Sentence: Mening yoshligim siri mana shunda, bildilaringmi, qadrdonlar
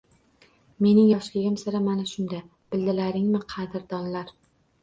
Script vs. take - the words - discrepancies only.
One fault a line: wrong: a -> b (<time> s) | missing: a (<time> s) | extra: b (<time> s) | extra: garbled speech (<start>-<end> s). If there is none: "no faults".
no faults